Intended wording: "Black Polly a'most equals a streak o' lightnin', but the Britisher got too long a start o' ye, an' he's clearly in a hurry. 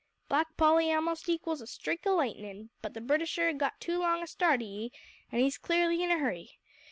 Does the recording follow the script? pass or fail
pass